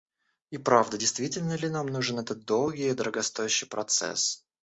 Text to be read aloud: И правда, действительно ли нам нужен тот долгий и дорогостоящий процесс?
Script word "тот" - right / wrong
wrong